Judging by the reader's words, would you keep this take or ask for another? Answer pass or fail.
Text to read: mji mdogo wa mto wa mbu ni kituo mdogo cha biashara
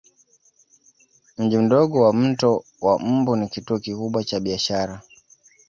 fail